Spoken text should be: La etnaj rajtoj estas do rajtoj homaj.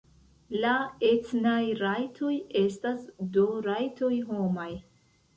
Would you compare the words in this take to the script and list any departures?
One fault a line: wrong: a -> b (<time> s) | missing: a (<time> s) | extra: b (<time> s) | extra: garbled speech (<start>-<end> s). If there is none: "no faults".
no faults